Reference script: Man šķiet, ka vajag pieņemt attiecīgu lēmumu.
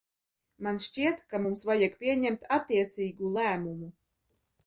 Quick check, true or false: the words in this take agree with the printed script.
false